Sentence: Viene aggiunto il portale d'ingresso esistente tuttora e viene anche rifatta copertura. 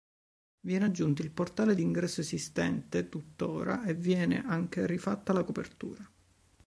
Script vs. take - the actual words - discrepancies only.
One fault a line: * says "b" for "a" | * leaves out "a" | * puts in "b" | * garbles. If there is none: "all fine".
* puts in "la"